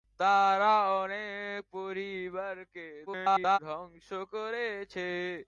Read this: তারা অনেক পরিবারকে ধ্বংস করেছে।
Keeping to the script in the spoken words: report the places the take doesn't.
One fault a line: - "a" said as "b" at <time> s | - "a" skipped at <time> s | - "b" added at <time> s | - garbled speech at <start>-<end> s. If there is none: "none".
- garbled speech at 3.1-3.6 s